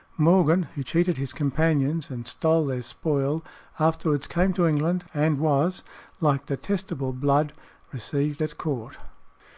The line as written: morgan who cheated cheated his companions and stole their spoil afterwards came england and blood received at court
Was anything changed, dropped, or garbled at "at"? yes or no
no